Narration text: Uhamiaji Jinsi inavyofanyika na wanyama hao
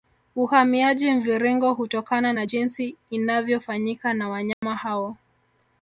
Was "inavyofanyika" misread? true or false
false